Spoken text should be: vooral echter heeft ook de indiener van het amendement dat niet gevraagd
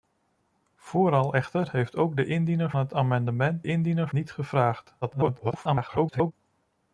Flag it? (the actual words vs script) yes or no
yes